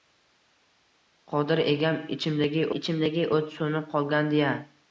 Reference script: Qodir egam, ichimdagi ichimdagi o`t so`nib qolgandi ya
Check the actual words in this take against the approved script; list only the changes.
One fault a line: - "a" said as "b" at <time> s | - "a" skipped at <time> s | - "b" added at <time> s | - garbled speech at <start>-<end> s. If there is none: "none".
none